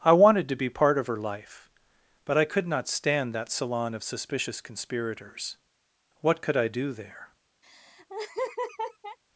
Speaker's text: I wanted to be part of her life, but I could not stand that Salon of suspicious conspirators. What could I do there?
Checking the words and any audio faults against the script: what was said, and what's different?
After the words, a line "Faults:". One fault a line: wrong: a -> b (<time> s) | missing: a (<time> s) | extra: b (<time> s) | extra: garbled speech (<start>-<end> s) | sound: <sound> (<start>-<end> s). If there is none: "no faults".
I wanted to be part of her life, but I could not stand that Salon of suspicious conspirators. What could I do there?
Faults:
sound: laugh (7.6-9.2 s)